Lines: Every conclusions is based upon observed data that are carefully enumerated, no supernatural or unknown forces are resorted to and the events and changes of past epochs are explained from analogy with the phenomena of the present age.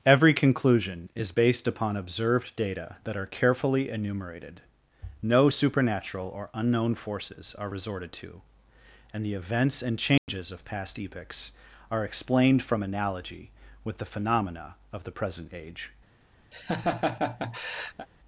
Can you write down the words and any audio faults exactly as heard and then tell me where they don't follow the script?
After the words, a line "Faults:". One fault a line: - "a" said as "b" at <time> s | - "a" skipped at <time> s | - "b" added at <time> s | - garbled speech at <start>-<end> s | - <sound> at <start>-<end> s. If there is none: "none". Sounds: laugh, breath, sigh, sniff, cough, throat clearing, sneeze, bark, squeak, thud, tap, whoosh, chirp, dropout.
Every conclusion is based upon observed data that are carefully enumerated, no supernatural or unknown forces are resorted to and the events and changes of past epochs are explained from analogy with the phenomena of the present age.
Faults:
- "conclusions" said as "conclusion" at 0.3 s
- dropout at 10.2-10.3 s
- laugh at 16.5-18.1 s